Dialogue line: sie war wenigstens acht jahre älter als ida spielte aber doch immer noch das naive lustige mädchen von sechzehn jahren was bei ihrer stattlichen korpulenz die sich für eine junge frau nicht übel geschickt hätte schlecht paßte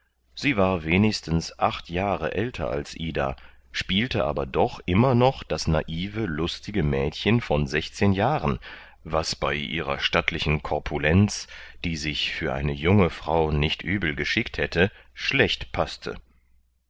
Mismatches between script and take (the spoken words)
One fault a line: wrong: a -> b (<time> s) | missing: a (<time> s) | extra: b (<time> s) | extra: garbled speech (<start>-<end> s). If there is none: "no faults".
no faults